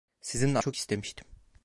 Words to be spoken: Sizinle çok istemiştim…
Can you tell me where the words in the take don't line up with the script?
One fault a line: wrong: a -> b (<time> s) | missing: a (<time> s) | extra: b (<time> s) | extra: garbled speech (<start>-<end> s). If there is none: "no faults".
no faults